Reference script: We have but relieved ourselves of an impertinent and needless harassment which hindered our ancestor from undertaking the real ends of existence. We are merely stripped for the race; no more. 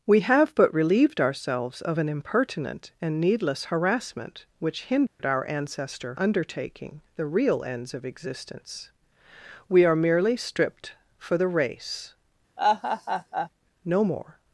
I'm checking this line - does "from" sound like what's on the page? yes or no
no